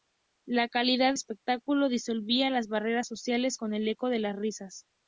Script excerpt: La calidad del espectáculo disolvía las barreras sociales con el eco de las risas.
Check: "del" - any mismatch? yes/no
yes